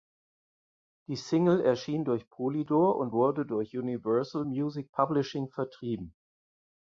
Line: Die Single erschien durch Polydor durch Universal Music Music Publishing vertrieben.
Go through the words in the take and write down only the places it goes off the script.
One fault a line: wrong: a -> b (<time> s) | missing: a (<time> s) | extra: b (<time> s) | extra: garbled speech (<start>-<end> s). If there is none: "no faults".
extra: und wurde (3.0 s)
missing: Music (4.9 s)